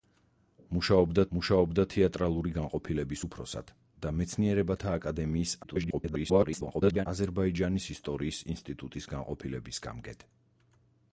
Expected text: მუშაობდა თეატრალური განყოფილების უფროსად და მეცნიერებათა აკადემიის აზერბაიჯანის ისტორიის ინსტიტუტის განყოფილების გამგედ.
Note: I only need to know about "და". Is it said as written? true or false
true